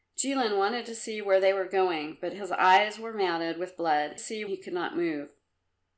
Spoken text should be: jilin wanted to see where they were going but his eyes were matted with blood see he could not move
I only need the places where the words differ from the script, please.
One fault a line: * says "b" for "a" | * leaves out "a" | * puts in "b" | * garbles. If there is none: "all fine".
all fine